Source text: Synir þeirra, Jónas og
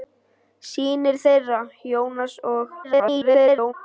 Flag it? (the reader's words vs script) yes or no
yes